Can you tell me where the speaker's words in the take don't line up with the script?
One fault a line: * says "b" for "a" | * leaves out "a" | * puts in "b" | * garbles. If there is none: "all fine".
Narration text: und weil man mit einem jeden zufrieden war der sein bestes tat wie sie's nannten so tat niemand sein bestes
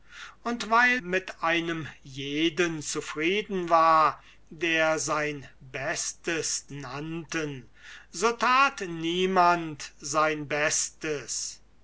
* leaves out "man"
* leaves out "tat wie sie's"